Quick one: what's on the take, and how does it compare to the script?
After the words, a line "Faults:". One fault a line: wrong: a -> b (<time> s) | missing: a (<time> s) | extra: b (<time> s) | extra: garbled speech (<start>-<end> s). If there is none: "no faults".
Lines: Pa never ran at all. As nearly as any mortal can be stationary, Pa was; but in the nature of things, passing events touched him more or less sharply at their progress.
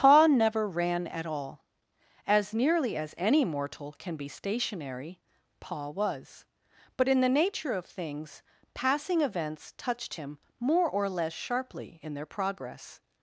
Pa never ran at all. As nearly as any mortal can be stationary, Pa was; but in the nature of things, passing events touched him more or less sharply in their progress.
Faults:
wrong: at -> in (12.0 s)